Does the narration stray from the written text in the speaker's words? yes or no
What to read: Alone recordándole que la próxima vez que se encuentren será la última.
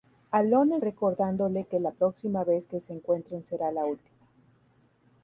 no